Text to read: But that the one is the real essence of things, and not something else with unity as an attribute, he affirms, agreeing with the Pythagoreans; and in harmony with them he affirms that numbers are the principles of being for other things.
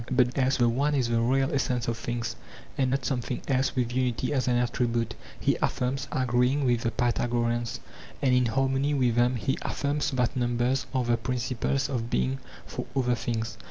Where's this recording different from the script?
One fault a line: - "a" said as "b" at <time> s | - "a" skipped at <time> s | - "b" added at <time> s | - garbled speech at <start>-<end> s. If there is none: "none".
- "that" said as "else" at 0.3 s